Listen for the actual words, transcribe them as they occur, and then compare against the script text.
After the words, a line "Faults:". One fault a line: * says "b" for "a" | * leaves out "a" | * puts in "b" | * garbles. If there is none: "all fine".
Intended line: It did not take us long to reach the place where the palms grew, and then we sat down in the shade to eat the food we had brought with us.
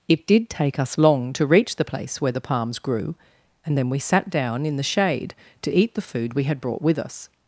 It did take us long to reach the place where the palms grew, and then we sat down in the shade to eat the food we had brought with us.
Faults:
* leaves out "not"